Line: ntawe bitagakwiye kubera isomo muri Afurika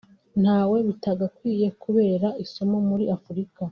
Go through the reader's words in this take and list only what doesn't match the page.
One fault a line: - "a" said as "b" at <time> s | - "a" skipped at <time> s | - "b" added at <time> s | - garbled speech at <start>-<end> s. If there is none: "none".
none